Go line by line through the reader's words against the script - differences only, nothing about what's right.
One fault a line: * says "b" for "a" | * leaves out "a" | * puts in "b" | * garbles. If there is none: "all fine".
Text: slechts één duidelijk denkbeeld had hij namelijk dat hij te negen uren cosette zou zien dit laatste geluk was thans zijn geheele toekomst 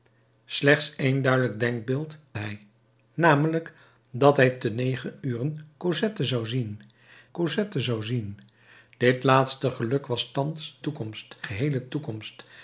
* leaves out "had"
* puts in "cosette zou zien"
* says "toekomst" for "zijn"